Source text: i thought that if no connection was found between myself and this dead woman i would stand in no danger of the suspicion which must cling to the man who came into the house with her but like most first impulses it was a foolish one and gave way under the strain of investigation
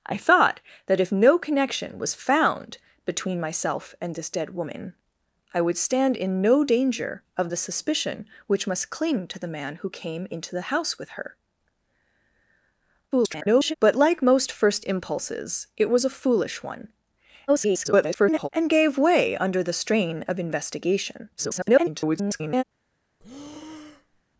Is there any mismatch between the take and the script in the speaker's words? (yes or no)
yes